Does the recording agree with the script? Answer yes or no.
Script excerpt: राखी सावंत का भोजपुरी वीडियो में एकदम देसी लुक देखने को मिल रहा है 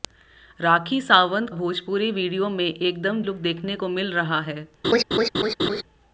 no